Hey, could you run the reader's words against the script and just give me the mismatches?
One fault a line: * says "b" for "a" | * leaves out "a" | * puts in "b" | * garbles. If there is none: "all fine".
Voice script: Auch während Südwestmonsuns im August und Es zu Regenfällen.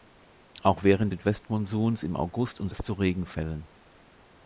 all fine